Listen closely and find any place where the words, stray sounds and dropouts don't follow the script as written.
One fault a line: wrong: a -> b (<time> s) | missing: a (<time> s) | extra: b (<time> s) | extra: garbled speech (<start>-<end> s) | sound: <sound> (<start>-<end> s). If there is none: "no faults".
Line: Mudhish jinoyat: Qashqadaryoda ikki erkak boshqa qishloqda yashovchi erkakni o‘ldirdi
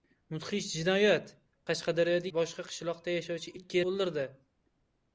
missing: ikki erkak (2.3 s)
wrong: erkakni -> ikki (3.5 s)